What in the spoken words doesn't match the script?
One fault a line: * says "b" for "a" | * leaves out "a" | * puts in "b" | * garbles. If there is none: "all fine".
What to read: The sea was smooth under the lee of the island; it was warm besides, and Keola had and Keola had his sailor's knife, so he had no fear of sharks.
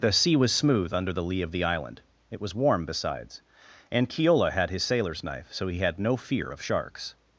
* leaves out "and Keola had"